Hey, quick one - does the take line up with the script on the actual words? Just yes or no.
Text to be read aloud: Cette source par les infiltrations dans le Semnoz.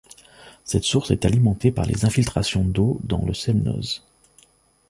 no